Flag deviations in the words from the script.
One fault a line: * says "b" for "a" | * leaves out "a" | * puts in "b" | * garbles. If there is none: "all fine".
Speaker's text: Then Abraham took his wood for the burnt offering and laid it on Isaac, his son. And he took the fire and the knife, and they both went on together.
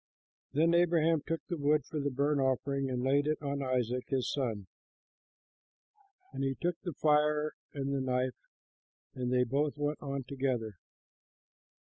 * says "the" for "his"